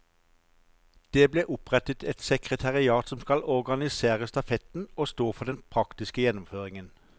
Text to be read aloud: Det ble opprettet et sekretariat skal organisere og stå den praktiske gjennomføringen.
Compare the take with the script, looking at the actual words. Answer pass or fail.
fail